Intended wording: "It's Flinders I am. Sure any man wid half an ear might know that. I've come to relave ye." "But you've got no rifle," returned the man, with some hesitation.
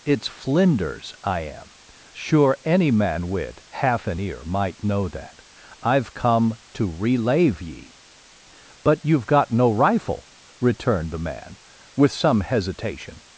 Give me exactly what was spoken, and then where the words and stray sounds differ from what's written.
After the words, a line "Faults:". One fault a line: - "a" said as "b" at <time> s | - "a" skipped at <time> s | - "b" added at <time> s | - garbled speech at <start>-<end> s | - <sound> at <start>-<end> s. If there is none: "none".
"It's Flinders I am. Sure any man wid half an ear might know that. I've come to relave ye." "But you've got no rifle," returned the man, with some hesitation.
Faults:
none